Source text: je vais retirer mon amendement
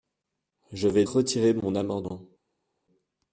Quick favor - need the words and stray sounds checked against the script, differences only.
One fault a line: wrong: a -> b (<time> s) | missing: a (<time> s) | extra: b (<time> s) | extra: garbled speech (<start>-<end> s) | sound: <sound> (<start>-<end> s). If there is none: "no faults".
no faults